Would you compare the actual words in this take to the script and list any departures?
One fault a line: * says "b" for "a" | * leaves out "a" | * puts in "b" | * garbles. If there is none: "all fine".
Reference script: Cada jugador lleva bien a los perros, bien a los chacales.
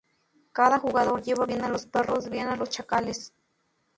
all fine